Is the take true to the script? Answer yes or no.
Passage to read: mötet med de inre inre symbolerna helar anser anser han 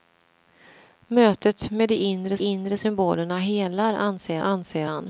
yes